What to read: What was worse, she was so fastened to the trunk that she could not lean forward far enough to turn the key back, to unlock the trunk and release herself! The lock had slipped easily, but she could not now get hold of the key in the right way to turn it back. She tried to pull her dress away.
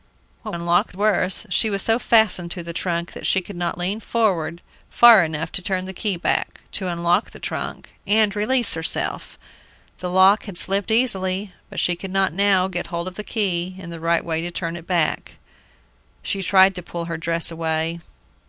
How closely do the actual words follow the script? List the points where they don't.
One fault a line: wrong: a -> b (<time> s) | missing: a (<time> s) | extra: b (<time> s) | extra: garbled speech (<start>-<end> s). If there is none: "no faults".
wrong: was -> unlock (0.5 s)